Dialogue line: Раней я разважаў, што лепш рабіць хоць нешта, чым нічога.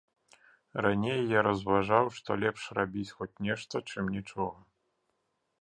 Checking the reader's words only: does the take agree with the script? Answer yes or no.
yes